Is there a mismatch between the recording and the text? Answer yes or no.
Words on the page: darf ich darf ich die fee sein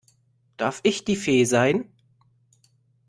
yes